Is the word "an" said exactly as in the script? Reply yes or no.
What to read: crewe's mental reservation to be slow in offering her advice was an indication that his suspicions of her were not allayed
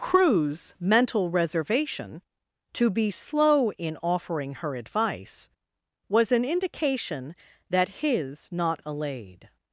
yes